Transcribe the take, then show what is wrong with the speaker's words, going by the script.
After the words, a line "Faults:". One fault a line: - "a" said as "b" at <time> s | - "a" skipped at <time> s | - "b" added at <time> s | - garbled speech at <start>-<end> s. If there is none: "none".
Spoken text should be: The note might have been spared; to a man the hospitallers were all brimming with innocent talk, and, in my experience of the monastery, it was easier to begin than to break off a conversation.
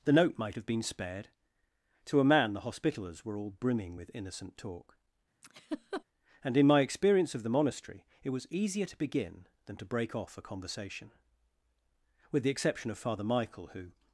The note might have been spared; to a man the hospitallers were all brimming with innocent talk, and, in my experience of the monastery, it was easier to begin than to break off a conversation. With the exception of Father Michael, who
Faults:
- "With the exception of Father Michael who" added at 12.3 s